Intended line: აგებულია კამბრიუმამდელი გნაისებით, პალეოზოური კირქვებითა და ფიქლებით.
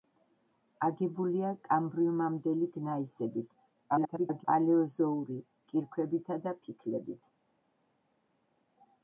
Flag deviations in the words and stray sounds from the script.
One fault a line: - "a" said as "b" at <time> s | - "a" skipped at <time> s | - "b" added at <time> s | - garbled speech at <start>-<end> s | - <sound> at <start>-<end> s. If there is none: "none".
- garbled speech at 3.9-4.4 s